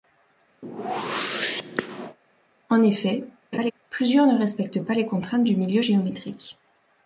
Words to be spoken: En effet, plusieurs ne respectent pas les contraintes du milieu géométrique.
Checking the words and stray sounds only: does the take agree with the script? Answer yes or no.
no